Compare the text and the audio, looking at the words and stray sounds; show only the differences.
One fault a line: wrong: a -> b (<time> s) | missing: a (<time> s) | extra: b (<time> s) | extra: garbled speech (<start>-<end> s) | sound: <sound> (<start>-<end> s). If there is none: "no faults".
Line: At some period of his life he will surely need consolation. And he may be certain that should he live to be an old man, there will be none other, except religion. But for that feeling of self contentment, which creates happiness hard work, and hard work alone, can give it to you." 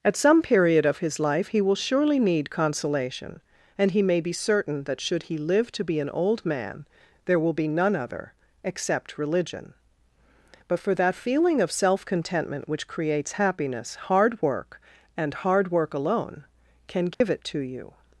sound: dropout (17.1-17.2 s)